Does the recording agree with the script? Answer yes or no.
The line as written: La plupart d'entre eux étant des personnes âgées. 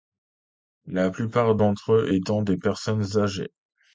yes